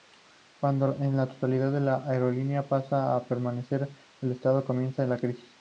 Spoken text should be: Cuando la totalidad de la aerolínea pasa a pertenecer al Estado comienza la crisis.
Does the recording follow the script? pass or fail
pass